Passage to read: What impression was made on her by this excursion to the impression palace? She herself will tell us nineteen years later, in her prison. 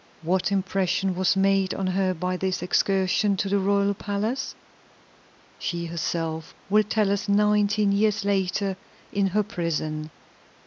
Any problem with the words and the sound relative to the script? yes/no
yes